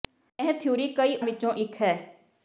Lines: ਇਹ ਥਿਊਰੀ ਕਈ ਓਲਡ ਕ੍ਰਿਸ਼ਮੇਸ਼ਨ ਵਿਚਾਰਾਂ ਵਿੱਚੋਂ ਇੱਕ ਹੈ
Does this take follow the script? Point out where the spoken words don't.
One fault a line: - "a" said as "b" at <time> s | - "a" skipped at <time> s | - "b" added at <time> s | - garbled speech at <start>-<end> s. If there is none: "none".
- "ਓਲਡ ਕ੍ਰਿਸ਼ਮੇਸ਼ਨ ਵਿਚਾਰਾਂ" skipped at 1.1 s